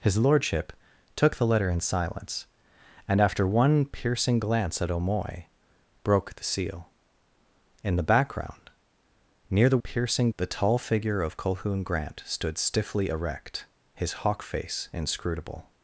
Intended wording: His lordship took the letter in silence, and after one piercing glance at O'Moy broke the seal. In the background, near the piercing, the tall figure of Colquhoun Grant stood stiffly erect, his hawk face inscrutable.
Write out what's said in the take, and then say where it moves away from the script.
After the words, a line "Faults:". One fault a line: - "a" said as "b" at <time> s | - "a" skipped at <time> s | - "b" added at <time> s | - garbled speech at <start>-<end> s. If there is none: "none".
His lordship took the letter in silence, and after one piercing glance at O'Moy broke the seal. In the background, near the piercing, the tall figure of Colquhoun Grant stood stiffly erect, his hawk face inscrutable.
Faults:
none